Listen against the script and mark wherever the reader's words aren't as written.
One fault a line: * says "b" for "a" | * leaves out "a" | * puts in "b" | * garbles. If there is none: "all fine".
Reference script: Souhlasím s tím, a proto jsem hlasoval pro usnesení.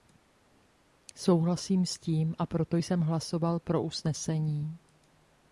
all fine